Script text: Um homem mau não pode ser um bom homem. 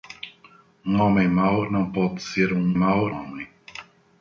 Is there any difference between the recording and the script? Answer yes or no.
yes